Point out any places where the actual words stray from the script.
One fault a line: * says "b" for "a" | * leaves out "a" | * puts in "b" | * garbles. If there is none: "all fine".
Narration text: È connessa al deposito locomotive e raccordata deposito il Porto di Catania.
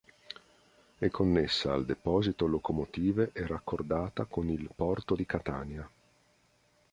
* says "con" for "deposito"